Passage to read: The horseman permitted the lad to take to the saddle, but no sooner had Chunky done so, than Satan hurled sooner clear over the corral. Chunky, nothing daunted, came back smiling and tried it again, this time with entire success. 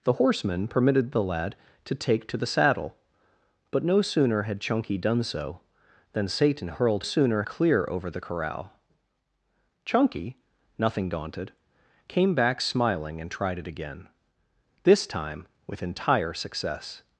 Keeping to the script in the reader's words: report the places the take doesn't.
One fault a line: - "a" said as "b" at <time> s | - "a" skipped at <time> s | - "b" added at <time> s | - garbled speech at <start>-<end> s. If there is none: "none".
none